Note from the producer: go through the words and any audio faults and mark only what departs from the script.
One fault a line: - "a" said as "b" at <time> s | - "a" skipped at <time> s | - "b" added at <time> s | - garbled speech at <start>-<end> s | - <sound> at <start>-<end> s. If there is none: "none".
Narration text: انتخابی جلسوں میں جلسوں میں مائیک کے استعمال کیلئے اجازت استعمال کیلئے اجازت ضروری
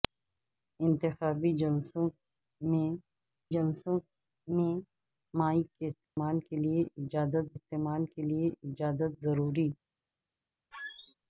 - dropout at 6.0-6.2 s
- squeak at 10.7-11.1 s